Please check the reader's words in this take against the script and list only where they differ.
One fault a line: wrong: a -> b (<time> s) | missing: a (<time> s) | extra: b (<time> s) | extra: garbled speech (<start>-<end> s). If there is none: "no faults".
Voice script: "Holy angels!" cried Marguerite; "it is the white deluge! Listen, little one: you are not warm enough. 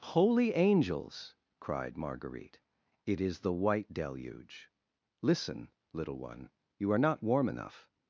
no faults